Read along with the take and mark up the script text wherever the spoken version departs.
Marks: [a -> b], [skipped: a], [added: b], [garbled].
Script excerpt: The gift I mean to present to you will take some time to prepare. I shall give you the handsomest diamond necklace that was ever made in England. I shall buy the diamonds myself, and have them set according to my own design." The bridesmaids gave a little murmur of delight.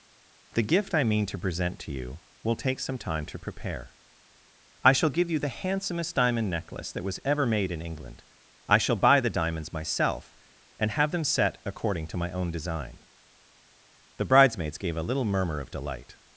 The gift I mean to present to you will take some time to prepare. I shall give you the handsomest diamond necklace that was ever made in England. I shall buy the diamonds myself, and have them set according to my own design." The bridesmaids gave a little murmur of delight.